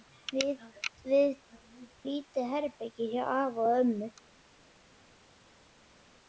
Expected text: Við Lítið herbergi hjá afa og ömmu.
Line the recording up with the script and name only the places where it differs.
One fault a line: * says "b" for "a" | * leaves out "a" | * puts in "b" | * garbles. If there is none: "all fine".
all fine